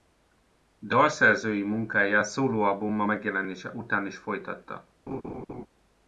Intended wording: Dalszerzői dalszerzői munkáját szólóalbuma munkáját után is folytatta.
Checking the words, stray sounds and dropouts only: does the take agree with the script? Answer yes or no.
no